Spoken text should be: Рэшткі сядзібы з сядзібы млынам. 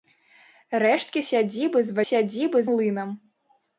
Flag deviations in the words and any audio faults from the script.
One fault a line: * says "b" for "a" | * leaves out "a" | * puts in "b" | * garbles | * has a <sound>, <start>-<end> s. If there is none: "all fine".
all fine